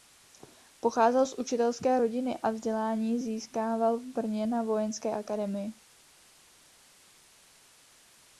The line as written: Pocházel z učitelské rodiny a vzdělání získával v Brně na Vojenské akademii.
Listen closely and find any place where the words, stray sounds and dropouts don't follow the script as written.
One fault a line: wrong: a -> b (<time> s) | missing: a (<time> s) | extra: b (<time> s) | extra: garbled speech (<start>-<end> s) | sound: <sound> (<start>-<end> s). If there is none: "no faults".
no faults